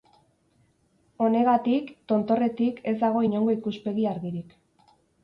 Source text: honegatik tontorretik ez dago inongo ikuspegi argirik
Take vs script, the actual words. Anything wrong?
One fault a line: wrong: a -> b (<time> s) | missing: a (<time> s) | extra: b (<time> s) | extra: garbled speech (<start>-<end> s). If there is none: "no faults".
no faults